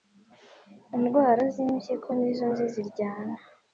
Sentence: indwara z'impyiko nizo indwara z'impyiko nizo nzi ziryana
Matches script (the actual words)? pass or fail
fail